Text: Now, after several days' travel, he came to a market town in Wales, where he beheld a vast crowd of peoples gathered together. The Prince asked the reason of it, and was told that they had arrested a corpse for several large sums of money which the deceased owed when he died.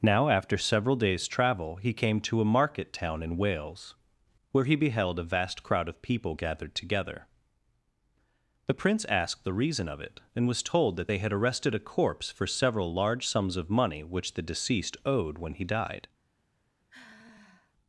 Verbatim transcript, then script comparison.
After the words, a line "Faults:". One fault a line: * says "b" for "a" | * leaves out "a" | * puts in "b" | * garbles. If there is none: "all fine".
Now, after several days' travel, he came to a market town in Wales, where he beheld a vast crowd of people gathered together. The Prince asked the reason of it, and was told that they had arrested a corpse for several large sums of money which the deceased owed when he died.
Faults:
* says "people" for "peoples"